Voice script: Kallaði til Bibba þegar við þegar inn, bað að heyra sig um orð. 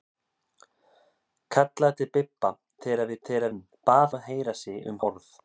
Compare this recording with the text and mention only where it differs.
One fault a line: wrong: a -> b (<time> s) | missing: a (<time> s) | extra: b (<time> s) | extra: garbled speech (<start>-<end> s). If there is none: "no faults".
no faults